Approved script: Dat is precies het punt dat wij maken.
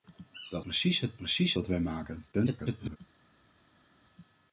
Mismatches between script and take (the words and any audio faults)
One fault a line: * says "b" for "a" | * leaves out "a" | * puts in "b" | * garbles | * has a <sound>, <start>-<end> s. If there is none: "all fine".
* leaves out "is"
* says "precies" for "punt"
* garbles